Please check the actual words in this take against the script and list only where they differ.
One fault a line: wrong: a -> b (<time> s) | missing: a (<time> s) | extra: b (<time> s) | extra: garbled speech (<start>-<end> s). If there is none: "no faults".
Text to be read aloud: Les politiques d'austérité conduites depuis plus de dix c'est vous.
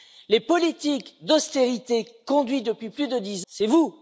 no faults